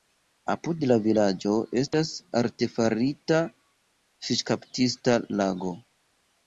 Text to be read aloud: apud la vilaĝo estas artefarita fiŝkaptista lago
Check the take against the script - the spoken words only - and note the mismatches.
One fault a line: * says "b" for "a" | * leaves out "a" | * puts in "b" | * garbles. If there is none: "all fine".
all fine